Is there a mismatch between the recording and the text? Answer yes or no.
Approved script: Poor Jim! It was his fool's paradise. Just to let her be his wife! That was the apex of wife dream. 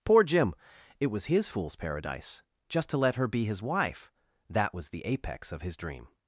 yes